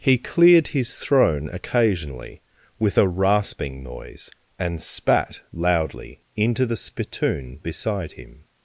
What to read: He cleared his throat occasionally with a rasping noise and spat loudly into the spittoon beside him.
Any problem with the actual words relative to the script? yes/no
yes